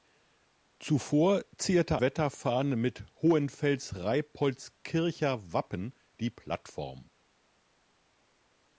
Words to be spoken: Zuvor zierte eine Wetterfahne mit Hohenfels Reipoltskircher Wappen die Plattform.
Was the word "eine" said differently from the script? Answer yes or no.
yes